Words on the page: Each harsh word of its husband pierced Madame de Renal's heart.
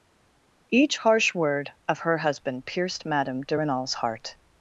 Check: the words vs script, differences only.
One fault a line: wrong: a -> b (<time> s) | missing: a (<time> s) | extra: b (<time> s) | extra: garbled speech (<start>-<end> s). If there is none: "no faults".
wrong: its -> her (2.0 s)